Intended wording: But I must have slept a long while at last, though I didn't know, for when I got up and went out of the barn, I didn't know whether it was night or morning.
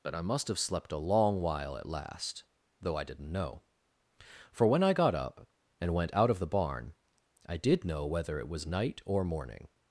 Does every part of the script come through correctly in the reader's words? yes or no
no